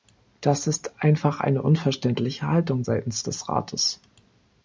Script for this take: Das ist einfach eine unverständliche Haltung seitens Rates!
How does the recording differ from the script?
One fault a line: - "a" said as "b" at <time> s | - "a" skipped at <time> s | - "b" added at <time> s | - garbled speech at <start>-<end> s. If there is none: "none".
- "des" added at 3.2 s